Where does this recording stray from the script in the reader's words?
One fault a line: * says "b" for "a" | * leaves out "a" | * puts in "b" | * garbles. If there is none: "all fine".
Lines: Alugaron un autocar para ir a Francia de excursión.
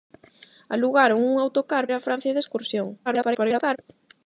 * leaves out "para"
* garbles